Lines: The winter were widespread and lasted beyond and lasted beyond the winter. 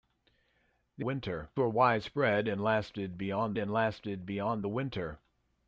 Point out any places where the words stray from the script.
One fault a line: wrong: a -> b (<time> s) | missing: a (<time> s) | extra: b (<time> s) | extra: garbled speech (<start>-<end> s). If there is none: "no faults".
no faults